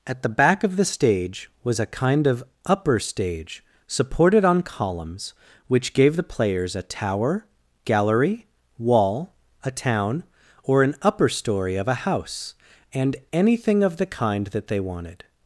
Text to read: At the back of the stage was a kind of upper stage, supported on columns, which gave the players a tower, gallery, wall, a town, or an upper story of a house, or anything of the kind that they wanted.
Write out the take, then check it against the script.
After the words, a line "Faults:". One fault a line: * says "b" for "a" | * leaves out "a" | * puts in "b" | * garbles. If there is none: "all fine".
At the back of the stage was a kind of upper stage, supported on columns, which gave the players a tower, gallery, wall, a town, or an upper story of a house, and anything of the kind that they wanted.
Faults:
* says "and" for "or"